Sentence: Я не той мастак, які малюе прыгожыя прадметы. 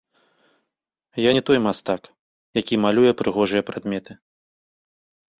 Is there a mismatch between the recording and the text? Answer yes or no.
no